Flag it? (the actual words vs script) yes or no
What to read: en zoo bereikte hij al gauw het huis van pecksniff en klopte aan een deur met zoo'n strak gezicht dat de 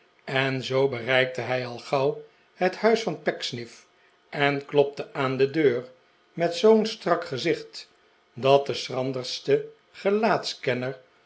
yes